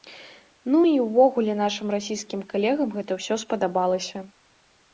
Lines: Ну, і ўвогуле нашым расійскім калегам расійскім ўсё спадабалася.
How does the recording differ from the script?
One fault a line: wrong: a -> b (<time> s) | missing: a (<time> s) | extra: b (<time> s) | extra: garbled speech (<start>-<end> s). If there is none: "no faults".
wrong: расійскім -> гэта (3.0 s)